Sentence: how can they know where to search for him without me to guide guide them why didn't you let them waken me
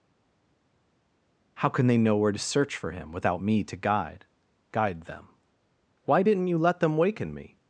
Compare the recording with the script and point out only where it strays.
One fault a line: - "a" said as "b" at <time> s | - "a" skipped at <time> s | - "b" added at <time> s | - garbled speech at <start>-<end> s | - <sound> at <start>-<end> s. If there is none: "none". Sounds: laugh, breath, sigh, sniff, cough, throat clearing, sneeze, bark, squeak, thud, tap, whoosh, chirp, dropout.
none